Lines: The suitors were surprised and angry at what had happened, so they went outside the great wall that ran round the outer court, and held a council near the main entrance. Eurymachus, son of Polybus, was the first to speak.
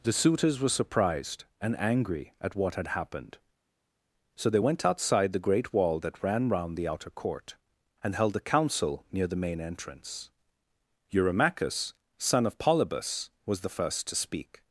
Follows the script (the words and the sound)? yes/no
yes